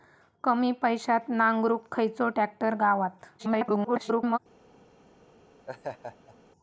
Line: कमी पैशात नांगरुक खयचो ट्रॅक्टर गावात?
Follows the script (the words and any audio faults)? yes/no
no